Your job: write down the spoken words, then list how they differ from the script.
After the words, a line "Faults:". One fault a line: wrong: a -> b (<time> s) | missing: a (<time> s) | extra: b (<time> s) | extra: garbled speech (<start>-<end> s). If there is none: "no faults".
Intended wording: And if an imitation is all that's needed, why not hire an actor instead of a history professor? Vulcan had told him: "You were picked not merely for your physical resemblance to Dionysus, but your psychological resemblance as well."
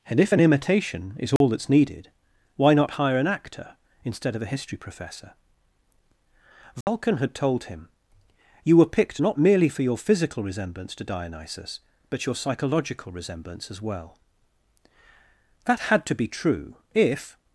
And if an imitation is all that's needed, why not hire an actor instead of a history professor? Vulcan had told him: "You were picked not merely for your physical resemblance to Dionysus, but your psychological resemblance as well." That had to be true, if
Faults:
extra: That had to be true if (15.6 s)